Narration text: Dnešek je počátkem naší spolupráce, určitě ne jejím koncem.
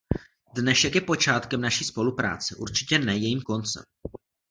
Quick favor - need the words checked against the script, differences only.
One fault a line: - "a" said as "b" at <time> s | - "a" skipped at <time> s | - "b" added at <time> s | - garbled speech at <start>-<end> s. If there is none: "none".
none